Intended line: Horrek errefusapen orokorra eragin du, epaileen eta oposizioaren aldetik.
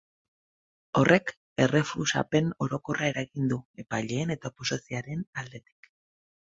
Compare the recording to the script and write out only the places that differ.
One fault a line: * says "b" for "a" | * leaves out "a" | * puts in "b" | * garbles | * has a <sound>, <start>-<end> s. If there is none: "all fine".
all fine